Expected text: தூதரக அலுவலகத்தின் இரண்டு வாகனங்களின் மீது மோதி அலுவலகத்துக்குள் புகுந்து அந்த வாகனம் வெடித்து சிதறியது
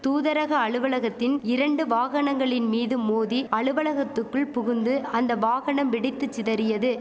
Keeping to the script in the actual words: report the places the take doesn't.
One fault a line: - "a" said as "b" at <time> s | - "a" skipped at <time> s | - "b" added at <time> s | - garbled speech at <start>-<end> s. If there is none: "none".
none